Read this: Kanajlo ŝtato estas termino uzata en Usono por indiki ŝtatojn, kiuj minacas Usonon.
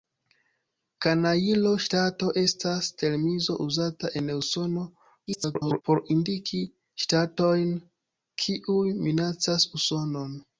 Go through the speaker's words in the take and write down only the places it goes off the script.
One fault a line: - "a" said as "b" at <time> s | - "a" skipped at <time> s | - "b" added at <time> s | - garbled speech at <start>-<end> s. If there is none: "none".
- garbled speech at 5.3-5.8 s